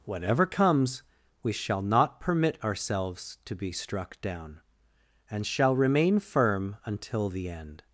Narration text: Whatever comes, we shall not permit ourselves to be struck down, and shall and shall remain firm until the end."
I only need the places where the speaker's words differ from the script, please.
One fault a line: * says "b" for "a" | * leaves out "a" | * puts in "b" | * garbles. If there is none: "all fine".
* leaves out "and shall"